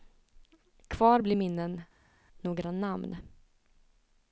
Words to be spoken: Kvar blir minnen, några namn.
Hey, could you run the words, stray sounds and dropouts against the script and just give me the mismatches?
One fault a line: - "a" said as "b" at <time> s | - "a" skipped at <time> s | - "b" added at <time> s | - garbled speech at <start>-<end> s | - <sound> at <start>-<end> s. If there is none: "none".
none